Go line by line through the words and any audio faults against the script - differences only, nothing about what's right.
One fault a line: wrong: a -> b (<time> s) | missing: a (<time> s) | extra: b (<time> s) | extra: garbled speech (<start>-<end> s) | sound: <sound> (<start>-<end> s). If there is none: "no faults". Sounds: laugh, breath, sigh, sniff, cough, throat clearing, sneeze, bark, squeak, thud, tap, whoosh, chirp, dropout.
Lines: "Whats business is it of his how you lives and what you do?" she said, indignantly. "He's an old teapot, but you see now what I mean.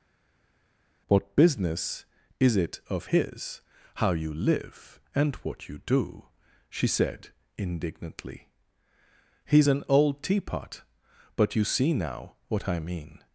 wrong: Whats -> What (1.1 s)
wrong: lives -> live (4.3 s)